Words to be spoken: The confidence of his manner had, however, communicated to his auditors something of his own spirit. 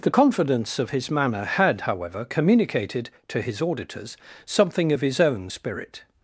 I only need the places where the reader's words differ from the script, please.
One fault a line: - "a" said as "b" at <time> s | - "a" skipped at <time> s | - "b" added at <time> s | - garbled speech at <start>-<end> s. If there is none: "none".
none